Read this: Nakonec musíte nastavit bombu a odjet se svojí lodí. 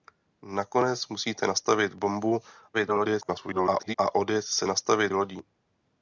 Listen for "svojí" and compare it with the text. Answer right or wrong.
wrong